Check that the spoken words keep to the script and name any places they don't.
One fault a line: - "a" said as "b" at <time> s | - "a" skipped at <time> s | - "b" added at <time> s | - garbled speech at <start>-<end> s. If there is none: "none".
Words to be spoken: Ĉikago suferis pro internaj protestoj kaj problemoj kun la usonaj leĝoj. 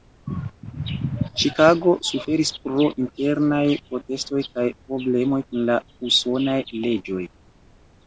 none